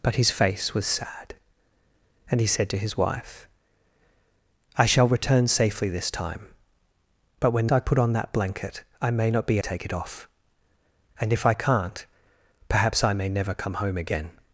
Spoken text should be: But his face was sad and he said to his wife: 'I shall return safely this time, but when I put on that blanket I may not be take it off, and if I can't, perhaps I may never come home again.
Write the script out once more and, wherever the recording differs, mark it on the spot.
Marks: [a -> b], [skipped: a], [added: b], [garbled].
But his face was sad and he said to his wife: 'I shall return safely this time, but when I put on that blanket I may not be take it off, and if I can't, perhaps I may never come home again.